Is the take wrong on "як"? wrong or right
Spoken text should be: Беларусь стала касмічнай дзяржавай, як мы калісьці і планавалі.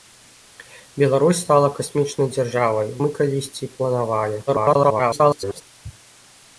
wrong